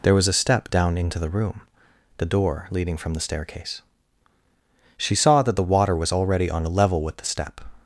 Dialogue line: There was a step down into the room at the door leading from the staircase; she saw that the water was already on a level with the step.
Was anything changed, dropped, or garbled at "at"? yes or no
yes